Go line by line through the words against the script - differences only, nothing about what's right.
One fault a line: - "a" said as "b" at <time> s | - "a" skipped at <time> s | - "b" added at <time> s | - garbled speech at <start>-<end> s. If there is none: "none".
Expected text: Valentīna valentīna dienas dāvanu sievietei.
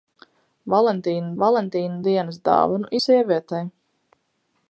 none